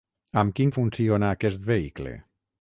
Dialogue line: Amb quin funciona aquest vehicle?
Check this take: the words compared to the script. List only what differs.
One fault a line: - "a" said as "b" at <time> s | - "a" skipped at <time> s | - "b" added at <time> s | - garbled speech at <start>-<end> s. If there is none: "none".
none